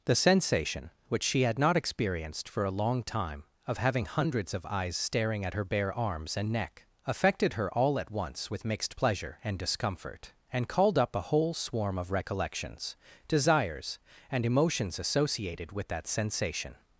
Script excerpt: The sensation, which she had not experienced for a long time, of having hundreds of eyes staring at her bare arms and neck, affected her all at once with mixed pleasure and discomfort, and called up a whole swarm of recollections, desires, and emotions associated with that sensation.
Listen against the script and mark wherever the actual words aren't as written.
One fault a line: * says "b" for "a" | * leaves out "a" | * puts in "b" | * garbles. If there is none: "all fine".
all fine